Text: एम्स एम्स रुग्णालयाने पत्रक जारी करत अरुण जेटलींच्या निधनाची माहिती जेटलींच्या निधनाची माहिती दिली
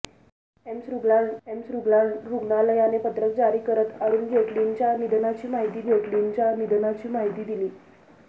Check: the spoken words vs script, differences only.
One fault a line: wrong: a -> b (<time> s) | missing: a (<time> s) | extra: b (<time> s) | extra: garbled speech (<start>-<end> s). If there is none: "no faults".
no faults